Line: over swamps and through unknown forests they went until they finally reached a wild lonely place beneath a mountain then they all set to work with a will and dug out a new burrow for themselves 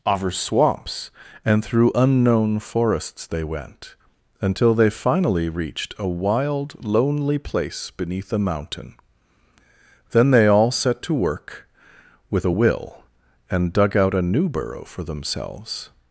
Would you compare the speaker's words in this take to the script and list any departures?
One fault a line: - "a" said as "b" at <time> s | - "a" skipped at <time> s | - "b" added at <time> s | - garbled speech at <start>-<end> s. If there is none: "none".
none